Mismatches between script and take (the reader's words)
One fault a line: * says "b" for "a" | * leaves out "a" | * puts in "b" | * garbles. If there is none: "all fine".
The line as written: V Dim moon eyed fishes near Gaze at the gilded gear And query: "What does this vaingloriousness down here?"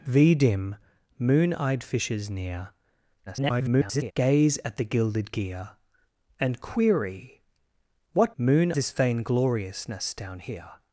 * garbles
* says "moon" for "does"